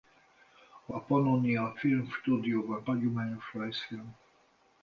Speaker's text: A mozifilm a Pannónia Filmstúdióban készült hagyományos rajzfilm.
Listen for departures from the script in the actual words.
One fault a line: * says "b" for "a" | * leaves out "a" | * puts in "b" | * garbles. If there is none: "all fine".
* leaves out "mozifilm"
* leaves out "készült"